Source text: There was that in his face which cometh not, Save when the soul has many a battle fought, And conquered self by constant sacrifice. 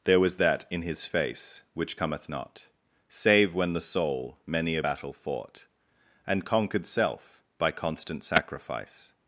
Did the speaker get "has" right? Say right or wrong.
wrong